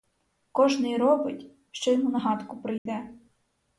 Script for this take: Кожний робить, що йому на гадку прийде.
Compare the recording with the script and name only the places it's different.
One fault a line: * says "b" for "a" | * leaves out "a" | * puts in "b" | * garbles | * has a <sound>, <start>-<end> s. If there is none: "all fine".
* has a dropout, 2.8-2.9 s